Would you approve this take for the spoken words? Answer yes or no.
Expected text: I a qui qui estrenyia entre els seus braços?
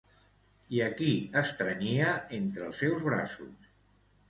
no